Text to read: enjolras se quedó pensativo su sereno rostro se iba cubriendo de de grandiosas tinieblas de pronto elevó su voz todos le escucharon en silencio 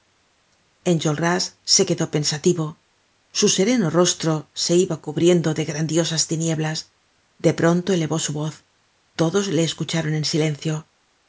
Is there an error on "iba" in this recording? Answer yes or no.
no